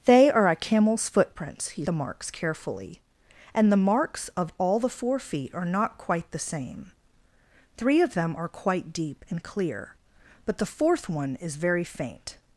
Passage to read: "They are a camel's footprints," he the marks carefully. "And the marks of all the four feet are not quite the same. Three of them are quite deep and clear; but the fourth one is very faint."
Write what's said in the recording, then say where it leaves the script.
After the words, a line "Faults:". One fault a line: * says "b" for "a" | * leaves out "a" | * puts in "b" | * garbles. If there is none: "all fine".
"They are a camel's footprints," he the marks carefully. "And the marks of all the four feet are not quite the same. Three of them are quite deep and clear; but the fourth one is very faint."
Faults:
all fine